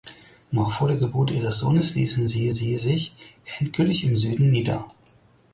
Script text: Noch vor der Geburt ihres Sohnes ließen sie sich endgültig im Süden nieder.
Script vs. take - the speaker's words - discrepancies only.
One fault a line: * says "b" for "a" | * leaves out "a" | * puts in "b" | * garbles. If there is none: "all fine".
* puts in "sie"